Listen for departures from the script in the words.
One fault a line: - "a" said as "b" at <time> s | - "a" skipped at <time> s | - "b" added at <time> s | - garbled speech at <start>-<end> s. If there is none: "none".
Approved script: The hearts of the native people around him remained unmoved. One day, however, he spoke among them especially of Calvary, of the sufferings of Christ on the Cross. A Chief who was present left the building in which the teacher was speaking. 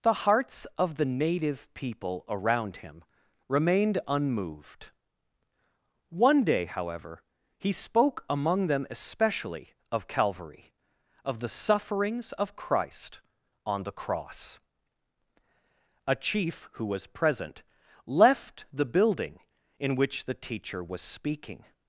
none